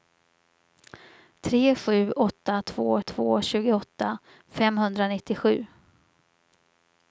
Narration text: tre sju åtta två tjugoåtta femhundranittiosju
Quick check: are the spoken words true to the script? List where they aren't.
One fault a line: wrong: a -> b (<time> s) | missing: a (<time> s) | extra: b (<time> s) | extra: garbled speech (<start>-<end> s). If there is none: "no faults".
extra: två (3.0 s)